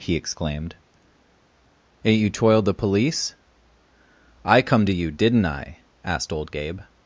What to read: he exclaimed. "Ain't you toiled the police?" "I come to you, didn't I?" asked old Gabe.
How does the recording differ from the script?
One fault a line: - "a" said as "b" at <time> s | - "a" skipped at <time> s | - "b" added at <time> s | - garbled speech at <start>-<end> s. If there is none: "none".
none